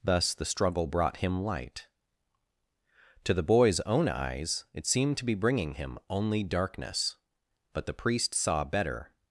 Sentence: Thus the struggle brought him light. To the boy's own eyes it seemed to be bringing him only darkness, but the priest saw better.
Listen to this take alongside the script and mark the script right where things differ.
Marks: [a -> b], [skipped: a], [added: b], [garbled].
Thus the struggle brought him light. To the boy's own eyes it seemed to be bringing him only darkness, but the priest saw better.